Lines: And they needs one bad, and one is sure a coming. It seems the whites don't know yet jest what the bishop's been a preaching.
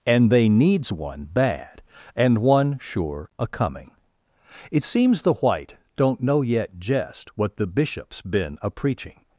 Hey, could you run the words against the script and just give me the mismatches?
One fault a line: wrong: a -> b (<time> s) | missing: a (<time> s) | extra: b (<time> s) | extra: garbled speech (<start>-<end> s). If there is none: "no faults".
missing: is (2.8 s)
wrong: whites -> white (5.3 s)